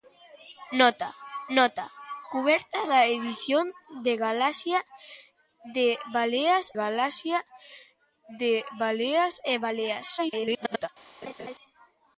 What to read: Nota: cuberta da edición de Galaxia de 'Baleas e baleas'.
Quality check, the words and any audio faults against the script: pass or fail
fail